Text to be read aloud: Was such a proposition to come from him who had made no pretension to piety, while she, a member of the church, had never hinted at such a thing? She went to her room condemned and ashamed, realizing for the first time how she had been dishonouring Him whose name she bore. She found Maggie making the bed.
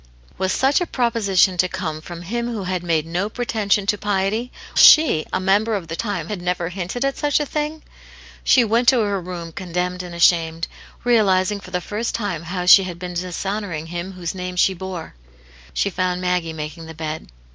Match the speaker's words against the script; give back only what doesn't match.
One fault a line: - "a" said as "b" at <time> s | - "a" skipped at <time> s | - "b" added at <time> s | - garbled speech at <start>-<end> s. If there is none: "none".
- "while" skipped at 4.5 s
- "church" said as "time" at 6.0 s